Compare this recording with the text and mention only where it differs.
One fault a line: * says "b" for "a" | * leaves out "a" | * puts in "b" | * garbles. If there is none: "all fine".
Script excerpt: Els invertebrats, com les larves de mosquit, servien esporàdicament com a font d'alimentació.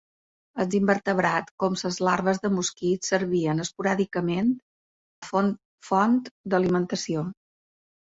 * leaves out "com"